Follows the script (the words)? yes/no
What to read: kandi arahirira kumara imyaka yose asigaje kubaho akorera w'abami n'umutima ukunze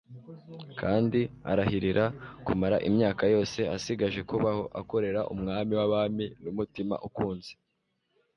no